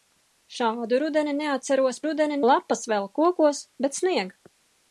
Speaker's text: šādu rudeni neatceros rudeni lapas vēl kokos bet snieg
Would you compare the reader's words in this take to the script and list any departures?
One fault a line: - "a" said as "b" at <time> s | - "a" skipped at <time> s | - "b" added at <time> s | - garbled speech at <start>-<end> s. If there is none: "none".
none